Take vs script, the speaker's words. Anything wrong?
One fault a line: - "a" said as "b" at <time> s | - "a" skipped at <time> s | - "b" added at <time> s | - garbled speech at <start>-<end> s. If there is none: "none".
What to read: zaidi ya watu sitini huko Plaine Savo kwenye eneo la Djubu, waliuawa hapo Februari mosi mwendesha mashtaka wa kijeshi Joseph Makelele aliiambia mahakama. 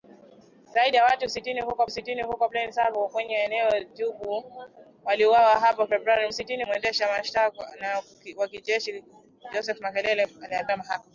- "sitini huko" added at 1.9 s
- "mosi" said as "sitini" at 6.3 s